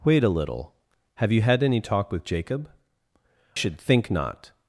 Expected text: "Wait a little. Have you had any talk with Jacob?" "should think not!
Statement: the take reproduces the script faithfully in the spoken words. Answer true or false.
true